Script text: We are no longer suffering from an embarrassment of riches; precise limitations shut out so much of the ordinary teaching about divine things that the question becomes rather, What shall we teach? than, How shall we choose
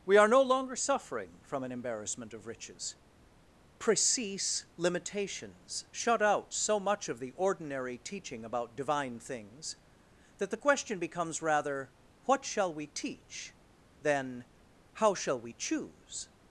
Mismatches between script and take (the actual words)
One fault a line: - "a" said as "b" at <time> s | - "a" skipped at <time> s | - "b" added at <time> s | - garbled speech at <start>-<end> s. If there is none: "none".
none